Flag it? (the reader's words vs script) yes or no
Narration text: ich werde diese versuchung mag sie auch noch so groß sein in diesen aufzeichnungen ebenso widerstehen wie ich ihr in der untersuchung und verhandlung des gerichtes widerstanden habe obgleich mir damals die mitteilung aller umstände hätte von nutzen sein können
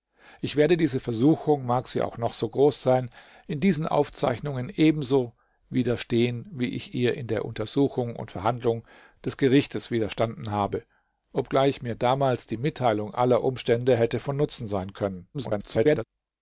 yes